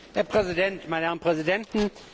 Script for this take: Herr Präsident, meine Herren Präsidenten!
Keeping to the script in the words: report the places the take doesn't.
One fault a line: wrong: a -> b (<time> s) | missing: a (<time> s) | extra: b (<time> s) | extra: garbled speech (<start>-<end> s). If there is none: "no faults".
no faults